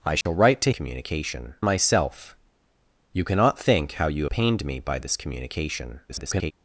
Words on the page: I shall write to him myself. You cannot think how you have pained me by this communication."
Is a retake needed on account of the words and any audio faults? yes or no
yes